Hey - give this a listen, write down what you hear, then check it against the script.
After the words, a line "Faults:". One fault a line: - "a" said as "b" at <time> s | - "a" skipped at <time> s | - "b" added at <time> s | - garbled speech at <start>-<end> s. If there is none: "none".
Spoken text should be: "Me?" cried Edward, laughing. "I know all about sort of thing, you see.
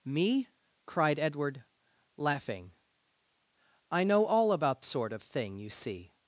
"Me?" cried Edward, laughing. "I know all about sort of thing, you see.
Faults:
none